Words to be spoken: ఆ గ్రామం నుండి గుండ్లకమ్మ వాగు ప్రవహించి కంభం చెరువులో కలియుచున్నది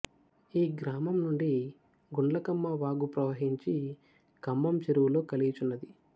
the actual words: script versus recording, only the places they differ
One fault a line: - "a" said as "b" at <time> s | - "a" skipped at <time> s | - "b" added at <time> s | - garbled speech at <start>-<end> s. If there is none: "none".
- "ఆ" said as "ఈ" at 0.5 s